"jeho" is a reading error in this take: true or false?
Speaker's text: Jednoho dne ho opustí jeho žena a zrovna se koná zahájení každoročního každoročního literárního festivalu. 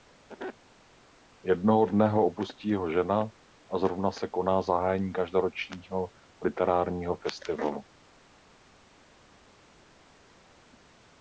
false